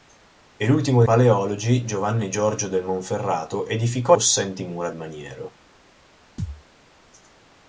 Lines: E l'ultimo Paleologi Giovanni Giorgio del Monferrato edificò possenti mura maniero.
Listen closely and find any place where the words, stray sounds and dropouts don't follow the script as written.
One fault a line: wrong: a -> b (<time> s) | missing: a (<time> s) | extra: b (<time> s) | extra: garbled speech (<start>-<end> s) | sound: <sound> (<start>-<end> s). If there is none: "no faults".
sound: thud (6.4-6.6 s)